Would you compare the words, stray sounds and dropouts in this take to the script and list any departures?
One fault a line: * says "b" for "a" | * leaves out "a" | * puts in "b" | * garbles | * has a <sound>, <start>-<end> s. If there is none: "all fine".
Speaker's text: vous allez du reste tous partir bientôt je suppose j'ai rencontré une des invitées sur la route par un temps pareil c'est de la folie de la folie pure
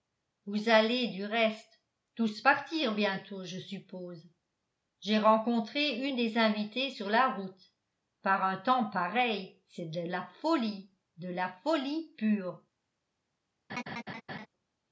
* has a laugh, 13.7-14.5 s